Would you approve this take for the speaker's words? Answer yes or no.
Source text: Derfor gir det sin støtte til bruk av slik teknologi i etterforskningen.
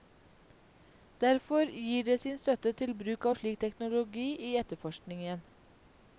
yes